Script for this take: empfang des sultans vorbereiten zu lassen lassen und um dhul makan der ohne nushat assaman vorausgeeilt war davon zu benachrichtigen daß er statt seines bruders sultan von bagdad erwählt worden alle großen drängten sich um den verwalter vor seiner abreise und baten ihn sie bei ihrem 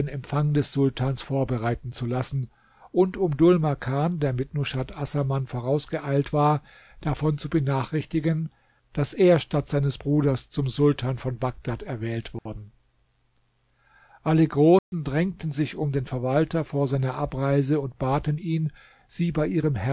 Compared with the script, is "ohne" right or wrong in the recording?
wrong